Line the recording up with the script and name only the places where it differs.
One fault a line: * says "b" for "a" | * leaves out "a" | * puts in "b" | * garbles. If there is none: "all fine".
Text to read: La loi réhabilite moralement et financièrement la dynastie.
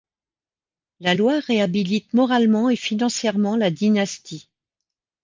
all fine